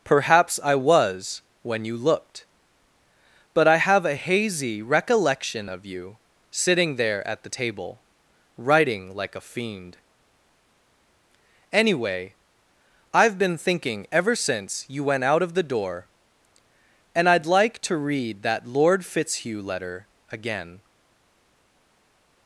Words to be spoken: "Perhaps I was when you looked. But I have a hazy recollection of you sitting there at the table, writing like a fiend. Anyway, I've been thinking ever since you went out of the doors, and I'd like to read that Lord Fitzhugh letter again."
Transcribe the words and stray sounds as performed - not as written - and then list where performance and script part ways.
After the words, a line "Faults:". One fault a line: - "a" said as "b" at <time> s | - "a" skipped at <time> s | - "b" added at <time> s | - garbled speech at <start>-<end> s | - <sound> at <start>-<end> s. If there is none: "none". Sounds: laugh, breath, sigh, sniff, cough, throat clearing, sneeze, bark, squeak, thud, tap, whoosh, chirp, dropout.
"Perhaps I was when you looked. But I have a hazy recollection of you sitting there at the table, writing like a fiend. Anyway, I've been thinking ever since you went out of the door, and I'd like to read that Lord Fitzhugh letter again."
Faults:
- "doors" said as "door" at 15.6 s